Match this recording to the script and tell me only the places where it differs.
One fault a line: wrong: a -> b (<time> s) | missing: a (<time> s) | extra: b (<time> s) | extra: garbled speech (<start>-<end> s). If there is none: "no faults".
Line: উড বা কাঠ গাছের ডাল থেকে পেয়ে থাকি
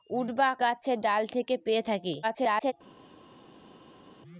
missing: কাঠ (0.5 s)
extra: garbled speech (2.2-2.7 s)